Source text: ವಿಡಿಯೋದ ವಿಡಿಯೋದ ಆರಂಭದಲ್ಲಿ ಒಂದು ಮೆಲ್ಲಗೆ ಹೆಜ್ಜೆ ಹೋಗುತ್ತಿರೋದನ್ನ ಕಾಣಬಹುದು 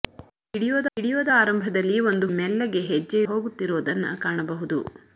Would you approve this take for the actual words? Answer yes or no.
yes